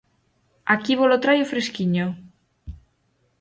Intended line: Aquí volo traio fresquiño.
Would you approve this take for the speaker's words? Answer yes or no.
yes